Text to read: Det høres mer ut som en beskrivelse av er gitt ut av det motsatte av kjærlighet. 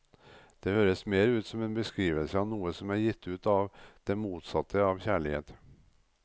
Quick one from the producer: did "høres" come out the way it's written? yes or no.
yes